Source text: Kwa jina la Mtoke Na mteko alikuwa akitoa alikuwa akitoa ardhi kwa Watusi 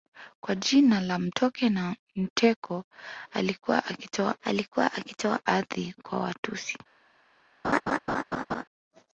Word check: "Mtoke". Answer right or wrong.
right